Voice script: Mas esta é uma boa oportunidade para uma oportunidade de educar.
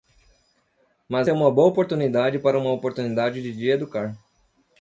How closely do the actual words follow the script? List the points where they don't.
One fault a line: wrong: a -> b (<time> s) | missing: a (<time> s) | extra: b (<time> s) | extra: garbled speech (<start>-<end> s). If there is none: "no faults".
missing: esta (1.3 s)